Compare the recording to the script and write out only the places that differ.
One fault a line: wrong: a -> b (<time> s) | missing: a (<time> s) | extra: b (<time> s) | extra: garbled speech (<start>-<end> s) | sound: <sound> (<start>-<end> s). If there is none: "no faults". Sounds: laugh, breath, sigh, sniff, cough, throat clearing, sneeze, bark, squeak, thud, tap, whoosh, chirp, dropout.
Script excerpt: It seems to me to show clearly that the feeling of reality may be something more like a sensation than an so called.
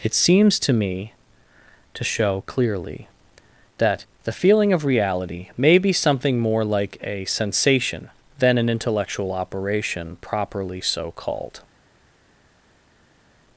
extra: intellectual operation properly (8.7 s)